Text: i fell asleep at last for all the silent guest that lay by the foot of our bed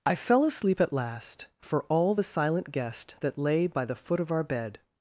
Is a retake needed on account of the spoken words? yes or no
no